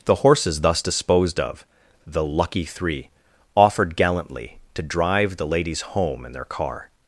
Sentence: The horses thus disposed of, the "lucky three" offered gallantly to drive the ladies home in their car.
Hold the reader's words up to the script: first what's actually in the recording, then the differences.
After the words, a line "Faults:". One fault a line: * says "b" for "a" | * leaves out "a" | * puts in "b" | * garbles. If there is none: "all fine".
The horses thus disposed of, the "lucky three" offered gallantly to drive the ladies home in their car.
Faults:
all fine